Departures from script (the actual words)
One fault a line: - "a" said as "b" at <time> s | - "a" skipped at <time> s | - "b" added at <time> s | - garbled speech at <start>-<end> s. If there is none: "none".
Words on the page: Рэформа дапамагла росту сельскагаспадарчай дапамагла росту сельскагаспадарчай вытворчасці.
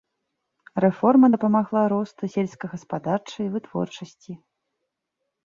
- "дапамагла росту сельскагаспадарчай" skipped at 3.5 s